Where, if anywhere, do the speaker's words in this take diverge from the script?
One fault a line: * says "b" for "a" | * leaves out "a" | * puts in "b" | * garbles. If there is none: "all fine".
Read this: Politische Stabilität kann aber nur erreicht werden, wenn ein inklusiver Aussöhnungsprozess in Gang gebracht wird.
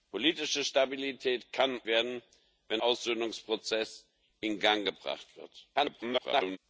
* leaves out "aber nur erreicht"
* leaves out "ein inklusiver"
* garbles